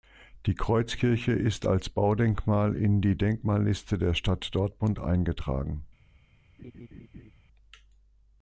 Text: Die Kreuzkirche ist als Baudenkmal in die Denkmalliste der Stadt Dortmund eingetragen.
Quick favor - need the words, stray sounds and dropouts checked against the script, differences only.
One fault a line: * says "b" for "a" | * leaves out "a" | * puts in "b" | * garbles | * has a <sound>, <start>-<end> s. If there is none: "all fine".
* has a laugh, 6.6-7.3 s